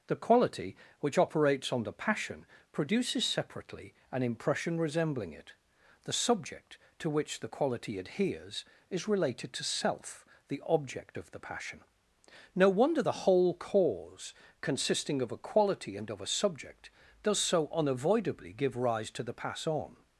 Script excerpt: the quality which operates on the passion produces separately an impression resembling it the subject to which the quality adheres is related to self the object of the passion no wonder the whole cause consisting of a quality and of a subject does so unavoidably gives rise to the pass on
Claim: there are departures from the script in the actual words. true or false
true